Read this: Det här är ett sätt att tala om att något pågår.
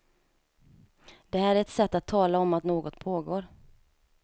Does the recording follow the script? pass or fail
pass